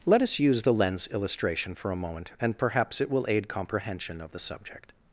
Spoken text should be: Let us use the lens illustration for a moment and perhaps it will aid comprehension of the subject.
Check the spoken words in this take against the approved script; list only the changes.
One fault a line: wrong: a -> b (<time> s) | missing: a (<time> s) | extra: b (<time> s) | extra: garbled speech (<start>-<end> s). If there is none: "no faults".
no faults